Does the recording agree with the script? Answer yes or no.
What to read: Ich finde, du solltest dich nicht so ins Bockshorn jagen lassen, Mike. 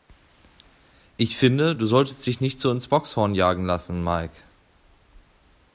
yes